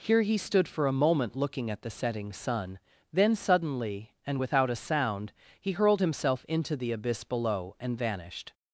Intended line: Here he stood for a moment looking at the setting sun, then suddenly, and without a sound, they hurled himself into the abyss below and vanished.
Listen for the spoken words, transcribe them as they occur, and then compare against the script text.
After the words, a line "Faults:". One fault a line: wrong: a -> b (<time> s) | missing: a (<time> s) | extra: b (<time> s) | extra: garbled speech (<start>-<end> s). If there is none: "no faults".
Here he stood for a moment looking at the setting sun, then suddenly, and without a sound, he hurled himself into the abyss below and vanished.
Faults:
wrong: they -> he (5.6 s)